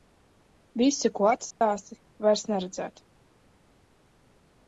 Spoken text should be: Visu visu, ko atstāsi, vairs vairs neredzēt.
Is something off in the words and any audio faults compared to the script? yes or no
yes